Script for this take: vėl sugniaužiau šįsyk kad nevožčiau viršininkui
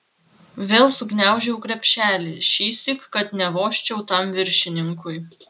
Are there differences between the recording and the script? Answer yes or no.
yes